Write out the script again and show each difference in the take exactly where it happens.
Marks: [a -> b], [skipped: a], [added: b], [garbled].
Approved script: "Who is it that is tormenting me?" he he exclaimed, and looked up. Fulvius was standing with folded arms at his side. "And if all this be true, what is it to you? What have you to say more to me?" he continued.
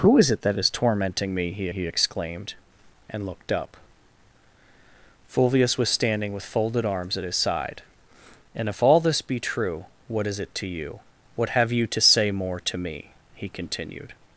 "Who is it that is tormenting me?" he he exclaimed, and looked up. Fulvius was standing with folded arms at his side. "And if all this be true, what is it to you? What have you to say more to me?" he continued.